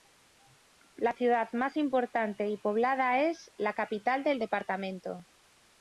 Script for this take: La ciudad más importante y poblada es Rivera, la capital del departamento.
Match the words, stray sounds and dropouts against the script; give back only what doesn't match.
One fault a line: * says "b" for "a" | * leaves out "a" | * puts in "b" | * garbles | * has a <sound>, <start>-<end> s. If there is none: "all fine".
* leaves out "Rivera"